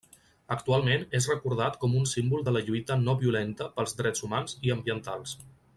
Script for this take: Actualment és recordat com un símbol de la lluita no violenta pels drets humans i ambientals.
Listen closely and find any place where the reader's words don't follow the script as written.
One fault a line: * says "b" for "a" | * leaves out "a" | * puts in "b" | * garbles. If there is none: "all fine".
all fine